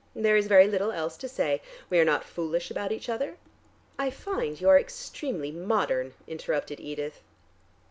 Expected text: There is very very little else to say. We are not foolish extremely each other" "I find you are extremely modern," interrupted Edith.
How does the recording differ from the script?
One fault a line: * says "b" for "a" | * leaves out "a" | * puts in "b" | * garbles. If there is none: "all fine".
* leaves out "very"
* says "about" for "extremely"